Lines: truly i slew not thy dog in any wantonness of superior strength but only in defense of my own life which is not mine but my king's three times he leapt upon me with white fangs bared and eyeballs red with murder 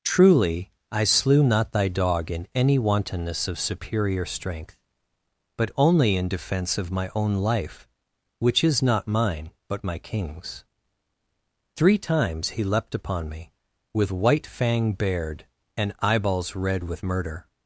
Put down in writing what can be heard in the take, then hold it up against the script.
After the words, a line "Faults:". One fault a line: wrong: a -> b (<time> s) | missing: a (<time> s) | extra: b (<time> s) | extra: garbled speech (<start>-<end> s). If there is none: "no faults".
truly i slew not thy dog in any wantonness of superior strength but only in defense of my own life which is not mine but my king's three times he leapt upon me with white fang bared and eyeballs red with murder
Faults:
wrong: fangs -> fang (14.5 s)